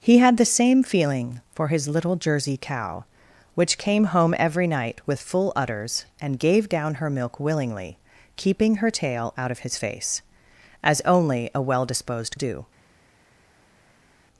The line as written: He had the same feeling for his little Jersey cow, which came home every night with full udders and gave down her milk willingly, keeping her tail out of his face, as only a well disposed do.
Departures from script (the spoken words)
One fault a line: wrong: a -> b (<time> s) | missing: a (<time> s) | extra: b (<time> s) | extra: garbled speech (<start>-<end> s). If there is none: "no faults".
no faults